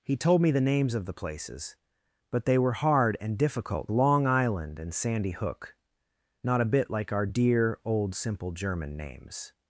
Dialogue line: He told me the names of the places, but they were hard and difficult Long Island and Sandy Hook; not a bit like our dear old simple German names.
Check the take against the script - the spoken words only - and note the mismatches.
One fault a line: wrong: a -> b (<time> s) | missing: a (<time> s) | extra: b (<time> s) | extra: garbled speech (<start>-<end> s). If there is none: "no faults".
no faults